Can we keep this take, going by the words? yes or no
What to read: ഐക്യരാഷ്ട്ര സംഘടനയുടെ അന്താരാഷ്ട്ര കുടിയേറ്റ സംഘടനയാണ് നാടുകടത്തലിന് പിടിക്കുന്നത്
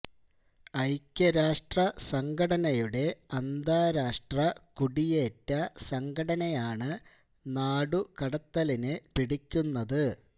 yes